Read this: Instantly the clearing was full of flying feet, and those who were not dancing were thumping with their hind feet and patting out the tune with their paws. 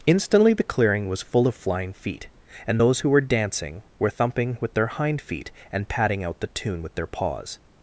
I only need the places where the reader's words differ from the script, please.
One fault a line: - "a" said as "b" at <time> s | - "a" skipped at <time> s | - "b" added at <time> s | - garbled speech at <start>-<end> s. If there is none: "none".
- "not" skipped at 3.2 s